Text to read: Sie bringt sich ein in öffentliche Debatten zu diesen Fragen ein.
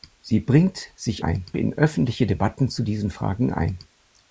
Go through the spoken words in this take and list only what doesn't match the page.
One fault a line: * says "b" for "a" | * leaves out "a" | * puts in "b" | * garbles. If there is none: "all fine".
all fine